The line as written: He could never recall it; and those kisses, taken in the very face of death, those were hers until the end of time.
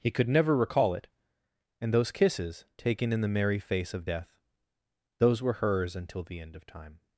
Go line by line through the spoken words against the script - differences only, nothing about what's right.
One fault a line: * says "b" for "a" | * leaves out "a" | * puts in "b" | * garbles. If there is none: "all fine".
* says "merry" for "very"